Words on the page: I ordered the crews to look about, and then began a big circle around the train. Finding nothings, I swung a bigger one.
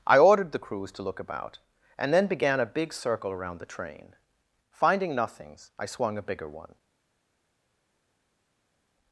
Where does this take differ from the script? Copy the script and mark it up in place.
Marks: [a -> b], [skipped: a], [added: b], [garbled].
I ordered the crews to look about, and then began a big circle around the train. Finding nothings, I swung a bigger one.